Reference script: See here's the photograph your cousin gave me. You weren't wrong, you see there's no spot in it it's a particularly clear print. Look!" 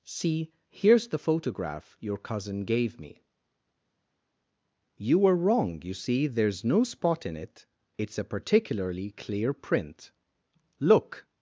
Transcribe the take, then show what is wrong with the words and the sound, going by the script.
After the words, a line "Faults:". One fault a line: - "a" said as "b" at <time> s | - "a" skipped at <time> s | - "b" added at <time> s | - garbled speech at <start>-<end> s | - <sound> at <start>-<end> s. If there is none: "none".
See here's the photograph your cousin gave me. You were wrong, you see there's no spot in it it's a particularly clear print. Look!"
Faults:
- "weren't" said as "were" at 5.2 s